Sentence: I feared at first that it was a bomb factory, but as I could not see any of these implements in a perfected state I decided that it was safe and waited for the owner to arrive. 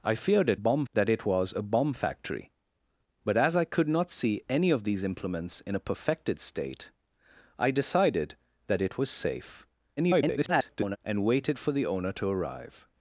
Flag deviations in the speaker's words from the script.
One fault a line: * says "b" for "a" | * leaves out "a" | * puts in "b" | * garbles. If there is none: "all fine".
* says "bomb" for "first"
* garbles